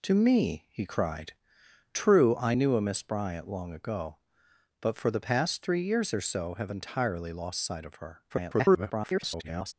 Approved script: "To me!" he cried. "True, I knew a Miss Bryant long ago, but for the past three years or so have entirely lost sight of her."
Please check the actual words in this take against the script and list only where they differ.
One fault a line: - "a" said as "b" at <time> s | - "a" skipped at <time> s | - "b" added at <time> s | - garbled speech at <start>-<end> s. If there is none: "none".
- garbled speech at 8.3-9.7 s